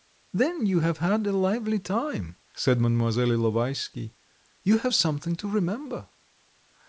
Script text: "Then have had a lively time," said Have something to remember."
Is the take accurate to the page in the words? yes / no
no